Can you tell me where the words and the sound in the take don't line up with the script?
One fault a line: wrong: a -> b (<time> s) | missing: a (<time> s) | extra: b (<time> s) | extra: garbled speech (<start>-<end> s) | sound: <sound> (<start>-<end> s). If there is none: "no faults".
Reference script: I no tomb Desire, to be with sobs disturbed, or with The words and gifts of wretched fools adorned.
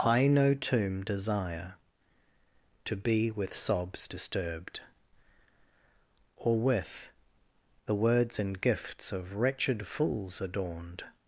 no faults